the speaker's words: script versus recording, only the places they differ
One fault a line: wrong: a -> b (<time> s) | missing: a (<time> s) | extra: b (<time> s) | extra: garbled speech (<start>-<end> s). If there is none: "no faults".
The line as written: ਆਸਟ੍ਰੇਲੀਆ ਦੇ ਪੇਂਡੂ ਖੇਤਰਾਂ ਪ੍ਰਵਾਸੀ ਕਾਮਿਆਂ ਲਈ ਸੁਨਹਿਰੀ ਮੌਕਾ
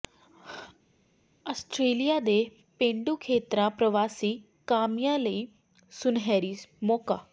no faults